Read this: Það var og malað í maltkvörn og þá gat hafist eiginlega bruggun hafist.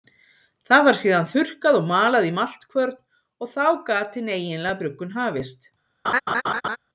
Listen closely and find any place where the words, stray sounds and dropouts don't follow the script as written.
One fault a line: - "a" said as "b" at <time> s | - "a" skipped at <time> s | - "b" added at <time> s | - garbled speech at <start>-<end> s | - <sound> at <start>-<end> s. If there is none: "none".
- "síðan þurrkað" added at 1.0 s
- "hafist" said as "hin" at 4.2 s
- laugh at 6.0-6.8 s